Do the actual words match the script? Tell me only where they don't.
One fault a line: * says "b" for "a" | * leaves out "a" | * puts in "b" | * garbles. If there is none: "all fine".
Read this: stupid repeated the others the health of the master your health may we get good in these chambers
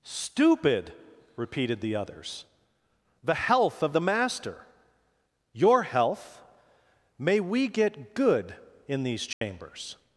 all fine